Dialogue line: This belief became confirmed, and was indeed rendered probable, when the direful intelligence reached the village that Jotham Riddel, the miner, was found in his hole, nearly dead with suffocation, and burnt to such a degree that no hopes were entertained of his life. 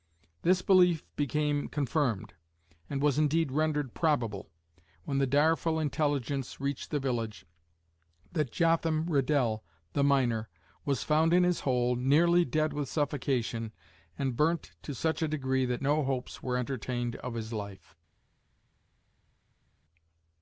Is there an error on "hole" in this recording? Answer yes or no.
no